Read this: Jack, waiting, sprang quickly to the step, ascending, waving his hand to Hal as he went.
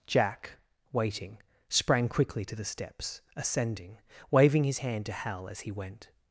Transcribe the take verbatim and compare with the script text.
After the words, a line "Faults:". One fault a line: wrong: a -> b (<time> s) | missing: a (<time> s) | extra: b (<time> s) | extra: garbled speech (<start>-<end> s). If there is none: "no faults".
Jack, waiting, sprang quickly to the steps, ascending, waving his hand to Hal as he went.
Faults:
wrong: step -> steps (2.6 s)